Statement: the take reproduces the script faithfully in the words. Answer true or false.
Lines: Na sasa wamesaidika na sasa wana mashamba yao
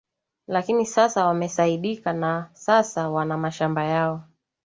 false